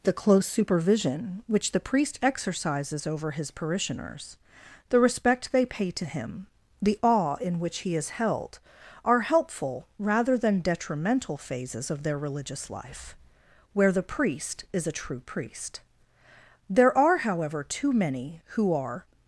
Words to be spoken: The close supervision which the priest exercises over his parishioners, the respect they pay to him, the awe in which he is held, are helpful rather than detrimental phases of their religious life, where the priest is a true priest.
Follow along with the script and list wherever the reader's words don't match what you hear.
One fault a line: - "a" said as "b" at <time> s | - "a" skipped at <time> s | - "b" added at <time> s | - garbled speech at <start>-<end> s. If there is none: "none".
- "There are however too many who are" added at 16.7 s